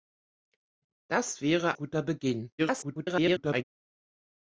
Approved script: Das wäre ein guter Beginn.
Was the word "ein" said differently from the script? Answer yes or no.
yes